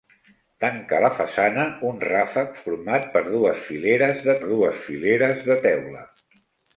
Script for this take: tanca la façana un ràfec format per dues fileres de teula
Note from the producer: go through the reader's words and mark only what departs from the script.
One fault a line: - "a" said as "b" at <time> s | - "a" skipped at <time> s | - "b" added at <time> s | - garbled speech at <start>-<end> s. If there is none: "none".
- "dues fileres de" added at 4.5 s